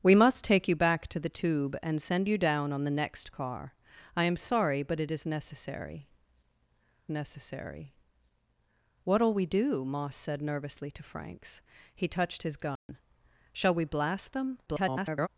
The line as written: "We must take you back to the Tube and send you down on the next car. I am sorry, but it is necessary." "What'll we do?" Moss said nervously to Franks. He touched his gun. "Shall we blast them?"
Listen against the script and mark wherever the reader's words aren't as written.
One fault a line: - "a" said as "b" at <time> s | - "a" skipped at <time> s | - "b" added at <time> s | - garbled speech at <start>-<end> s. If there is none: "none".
- "necessary" added at 7.1 s
- garbled speech at 14.7-15.3 s